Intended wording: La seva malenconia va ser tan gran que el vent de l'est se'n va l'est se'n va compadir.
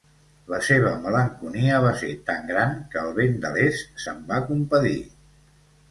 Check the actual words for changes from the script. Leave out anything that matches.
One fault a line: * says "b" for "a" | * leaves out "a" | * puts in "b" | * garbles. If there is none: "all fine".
* leaves out "l'est se'n va"